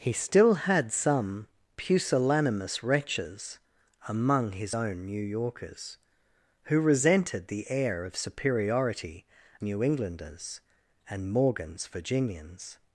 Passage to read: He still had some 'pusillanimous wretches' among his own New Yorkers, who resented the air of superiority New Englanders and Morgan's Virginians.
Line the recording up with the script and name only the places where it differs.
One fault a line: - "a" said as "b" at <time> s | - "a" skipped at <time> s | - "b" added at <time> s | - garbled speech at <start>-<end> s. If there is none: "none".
none